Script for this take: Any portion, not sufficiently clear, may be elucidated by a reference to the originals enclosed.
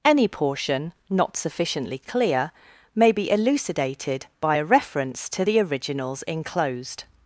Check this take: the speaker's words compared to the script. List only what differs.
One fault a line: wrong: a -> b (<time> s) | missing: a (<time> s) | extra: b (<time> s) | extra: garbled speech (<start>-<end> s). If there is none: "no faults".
no faults